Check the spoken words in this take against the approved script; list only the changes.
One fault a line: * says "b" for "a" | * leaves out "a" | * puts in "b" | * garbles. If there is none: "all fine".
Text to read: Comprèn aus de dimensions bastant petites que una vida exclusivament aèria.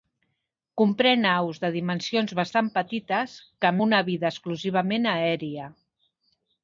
all fine